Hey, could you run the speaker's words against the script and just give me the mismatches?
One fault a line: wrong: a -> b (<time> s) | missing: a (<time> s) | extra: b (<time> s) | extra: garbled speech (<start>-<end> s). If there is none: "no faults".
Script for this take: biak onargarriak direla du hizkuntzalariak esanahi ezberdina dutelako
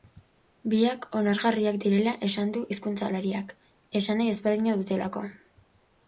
extra: esan (2.3 s)